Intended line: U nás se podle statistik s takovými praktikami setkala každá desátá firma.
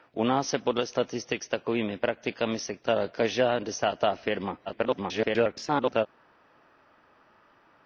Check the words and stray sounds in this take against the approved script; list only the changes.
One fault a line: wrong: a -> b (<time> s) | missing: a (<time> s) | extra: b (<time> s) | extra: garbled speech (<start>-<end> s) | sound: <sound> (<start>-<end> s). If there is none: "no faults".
extra: garbled speech (4.7-6.1 s)